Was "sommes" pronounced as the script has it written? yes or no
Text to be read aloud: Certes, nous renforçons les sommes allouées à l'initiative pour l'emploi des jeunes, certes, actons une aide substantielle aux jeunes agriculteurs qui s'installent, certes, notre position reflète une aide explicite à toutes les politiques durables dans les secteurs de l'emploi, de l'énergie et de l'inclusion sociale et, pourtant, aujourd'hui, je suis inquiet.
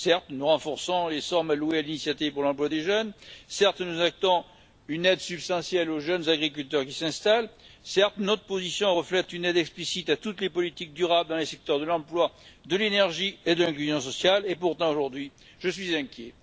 yes